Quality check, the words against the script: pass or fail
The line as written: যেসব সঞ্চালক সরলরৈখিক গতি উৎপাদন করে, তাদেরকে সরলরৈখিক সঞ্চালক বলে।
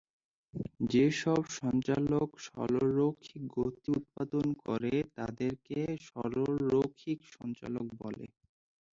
pass